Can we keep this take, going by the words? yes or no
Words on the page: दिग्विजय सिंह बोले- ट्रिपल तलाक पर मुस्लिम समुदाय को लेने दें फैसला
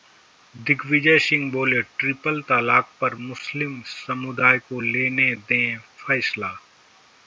yes